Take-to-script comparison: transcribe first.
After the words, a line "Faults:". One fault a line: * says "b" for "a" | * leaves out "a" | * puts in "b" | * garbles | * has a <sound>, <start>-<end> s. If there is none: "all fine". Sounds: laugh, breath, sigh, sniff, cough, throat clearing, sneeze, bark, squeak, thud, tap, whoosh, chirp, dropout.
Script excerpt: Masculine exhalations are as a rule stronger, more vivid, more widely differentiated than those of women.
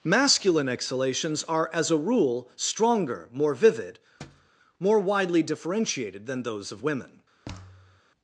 Masculine exhalations are as a rule stronger, more vivid, more widely differentiated than those of women.
Faults:
* has a thud, 4.2-4.5 s
* has a thud, 7.4-8.0 s